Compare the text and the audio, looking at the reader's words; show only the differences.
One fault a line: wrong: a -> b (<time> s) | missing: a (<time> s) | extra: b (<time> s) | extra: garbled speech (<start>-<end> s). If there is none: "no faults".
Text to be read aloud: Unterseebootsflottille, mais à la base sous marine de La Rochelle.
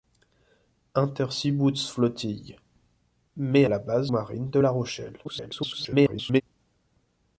missing: à (3.6 s)
missing: sous (4.1 s)
extra: garbled speech (5.2-6.4 s)